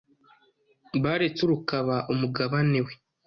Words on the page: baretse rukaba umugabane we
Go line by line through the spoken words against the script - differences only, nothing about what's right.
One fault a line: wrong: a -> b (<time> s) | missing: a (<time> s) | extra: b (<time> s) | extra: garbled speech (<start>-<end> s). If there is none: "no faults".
no faults